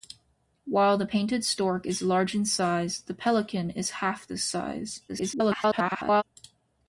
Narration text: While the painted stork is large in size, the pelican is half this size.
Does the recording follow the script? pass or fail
fail